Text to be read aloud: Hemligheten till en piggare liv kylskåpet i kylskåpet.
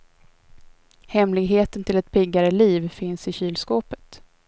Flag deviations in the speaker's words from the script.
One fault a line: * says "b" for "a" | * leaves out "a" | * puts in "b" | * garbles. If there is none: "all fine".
* says "ett" for "en"
* says "finns" for "kylskåpet"